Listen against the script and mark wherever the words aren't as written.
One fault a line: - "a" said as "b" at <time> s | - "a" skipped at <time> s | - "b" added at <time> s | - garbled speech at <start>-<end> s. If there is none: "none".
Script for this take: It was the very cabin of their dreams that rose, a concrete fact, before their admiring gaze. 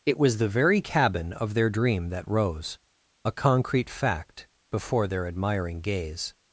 - "dreams" said as "dream" at 1.7 s